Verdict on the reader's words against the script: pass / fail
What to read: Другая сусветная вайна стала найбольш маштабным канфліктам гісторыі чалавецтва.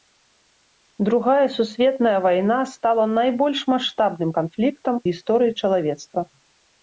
pass